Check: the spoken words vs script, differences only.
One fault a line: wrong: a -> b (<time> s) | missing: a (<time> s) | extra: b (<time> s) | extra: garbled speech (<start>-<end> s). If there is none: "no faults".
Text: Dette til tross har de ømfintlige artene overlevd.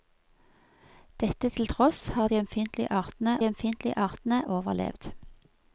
extra: ømfintlige artene (3.4 s)